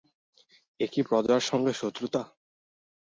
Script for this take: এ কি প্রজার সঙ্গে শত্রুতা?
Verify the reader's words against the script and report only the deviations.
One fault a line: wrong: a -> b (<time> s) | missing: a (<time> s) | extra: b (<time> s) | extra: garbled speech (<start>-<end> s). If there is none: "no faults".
no faults